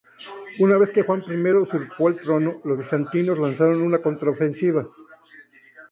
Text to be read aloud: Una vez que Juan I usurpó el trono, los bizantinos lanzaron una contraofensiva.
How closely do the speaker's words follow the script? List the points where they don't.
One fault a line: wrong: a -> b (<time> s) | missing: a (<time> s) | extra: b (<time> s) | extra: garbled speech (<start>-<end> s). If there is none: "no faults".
no faults